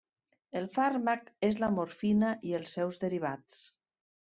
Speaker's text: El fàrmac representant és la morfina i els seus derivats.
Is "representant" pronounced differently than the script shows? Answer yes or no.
yes